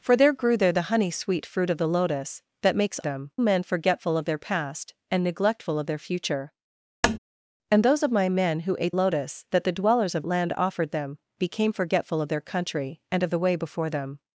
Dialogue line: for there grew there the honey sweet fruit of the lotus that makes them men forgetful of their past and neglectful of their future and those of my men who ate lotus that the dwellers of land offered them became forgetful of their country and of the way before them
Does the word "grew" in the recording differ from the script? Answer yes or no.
no